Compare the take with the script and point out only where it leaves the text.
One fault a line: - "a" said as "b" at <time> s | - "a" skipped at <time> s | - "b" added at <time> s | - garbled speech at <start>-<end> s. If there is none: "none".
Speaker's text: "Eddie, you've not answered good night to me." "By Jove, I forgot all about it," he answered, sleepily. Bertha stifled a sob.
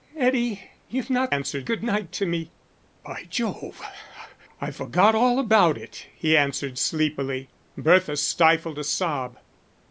none